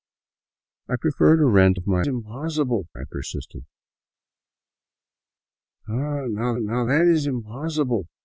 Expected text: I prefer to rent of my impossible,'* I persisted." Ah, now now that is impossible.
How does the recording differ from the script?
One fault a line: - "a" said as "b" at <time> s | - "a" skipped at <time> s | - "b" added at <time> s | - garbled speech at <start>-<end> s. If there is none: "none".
none